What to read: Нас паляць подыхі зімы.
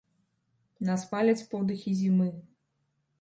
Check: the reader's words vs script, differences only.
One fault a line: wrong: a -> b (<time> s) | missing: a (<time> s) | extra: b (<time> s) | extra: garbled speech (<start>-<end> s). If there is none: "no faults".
no faults